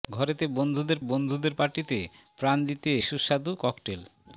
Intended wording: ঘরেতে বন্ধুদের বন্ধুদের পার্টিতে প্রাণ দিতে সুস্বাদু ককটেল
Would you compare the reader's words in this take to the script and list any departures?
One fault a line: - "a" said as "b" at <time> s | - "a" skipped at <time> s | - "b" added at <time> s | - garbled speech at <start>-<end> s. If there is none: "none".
none